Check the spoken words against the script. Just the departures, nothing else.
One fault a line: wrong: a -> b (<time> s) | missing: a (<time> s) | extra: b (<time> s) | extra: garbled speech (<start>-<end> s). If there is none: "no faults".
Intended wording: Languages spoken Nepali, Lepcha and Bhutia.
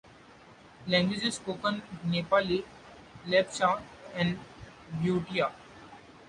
no faults